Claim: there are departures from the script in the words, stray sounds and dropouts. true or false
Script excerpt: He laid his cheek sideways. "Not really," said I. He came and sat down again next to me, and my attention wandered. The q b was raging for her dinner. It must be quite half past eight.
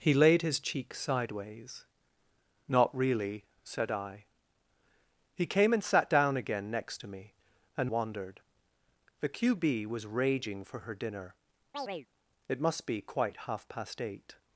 true